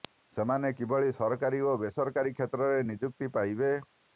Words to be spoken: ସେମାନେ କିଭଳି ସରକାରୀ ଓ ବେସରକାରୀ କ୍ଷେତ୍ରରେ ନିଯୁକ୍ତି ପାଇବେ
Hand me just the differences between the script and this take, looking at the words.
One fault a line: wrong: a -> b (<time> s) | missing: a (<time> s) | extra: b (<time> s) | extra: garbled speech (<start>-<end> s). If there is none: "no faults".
no faults